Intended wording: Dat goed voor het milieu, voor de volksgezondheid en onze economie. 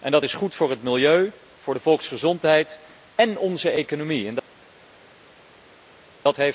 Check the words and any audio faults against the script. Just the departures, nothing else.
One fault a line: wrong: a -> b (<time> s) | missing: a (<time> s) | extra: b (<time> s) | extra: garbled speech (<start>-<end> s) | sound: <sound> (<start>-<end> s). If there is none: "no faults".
extra: is (0.2 s)